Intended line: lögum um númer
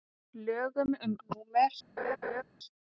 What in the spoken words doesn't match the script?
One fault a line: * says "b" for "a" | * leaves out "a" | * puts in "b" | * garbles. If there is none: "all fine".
all fine